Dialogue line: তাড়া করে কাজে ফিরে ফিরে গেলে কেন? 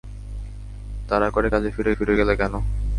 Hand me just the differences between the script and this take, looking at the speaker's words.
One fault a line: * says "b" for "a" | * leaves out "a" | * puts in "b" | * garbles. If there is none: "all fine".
all fine